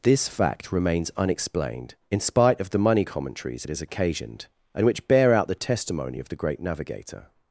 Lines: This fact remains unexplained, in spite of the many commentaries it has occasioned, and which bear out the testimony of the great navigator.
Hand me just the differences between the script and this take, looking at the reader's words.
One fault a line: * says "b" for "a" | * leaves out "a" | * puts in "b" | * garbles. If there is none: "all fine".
* says "money" for "many"